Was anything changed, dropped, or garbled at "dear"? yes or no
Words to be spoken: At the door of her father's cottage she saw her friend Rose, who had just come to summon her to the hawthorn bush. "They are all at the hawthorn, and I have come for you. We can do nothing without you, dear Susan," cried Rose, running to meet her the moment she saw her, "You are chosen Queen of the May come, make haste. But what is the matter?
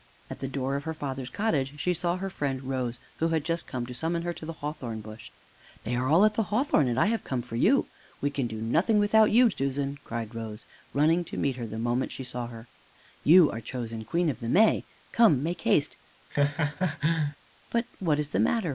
yes